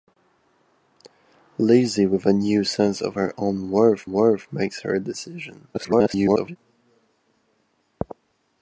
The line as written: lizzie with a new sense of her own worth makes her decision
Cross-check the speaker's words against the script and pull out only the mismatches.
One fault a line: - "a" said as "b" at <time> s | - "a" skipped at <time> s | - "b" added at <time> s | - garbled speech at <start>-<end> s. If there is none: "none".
- "worth" added at 4.1 s
- garbled speech at 5.7-6.6 s